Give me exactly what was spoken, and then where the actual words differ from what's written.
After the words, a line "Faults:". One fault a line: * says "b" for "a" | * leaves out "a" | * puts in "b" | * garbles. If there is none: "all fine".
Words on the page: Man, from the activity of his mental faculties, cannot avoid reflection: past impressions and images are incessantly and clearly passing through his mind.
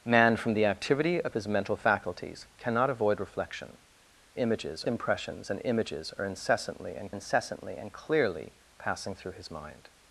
Man, from the activity of his mental faculties, cannot avoid reflection: images impressions and images are incessantly and incessantly and clearly passing through his mind.
Faults:
* says "images" for "past"
* puts in "incessantly and"